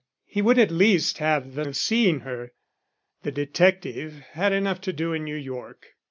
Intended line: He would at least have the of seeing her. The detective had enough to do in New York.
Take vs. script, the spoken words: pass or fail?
pass